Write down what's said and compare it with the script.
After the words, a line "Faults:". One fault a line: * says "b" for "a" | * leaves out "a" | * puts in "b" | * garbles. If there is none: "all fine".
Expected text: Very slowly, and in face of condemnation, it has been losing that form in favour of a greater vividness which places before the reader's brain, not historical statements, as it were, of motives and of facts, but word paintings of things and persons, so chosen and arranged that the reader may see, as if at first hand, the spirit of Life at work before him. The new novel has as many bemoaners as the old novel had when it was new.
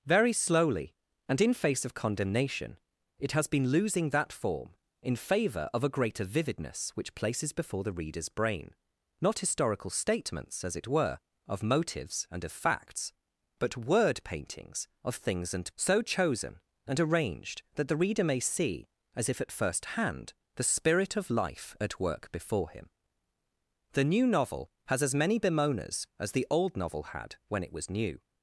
Very slowly, and in face of condemnation, it has been losing that form in favour of a greater vividness which places before the reader's brain, not historical statements, as it were, of motives and of facts, but word paintings of things and so chosen and arranged that the reader may see, as if at first hand, the spirit of Life at work before him. The new novel has as many bemoaners as the old novel had when it was new.
Faults:
* leaves out "persons"